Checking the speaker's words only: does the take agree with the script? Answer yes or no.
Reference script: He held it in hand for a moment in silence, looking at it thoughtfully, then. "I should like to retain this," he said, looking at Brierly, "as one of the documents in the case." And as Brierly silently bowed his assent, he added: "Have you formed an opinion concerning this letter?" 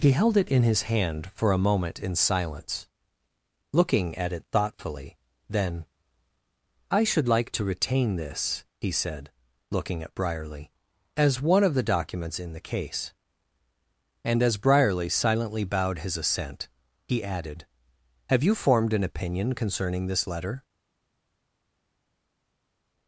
no